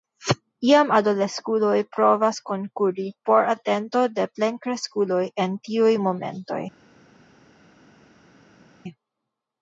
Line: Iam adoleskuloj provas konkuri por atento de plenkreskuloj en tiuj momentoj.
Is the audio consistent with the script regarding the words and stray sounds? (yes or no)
yes